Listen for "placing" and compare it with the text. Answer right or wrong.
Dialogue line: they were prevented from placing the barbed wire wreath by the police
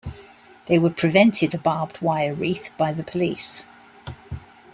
wrong